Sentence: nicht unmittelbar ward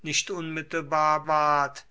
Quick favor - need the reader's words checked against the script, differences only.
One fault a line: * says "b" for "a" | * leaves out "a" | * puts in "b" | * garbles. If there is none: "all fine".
all fine